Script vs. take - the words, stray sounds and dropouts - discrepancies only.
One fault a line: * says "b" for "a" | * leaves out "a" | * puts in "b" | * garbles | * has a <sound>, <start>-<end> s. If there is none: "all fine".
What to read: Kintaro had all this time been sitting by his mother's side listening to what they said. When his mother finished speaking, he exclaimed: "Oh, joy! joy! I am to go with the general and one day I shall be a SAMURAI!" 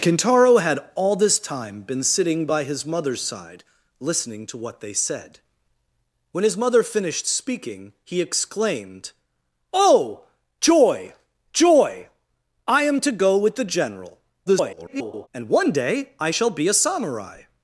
* garbles